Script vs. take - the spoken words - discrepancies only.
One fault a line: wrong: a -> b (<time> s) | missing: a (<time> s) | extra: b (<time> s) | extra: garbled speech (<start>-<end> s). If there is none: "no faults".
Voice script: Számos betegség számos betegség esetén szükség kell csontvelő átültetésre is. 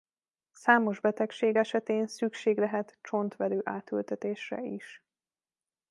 missing: számos betegség (1.6 s)
wrong: kell -> lehet (2.6 s)